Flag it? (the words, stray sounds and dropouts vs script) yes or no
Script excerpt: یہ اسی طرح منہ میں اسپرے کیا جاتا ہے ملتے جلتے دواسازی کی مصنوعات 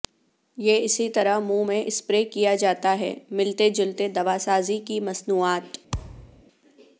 yes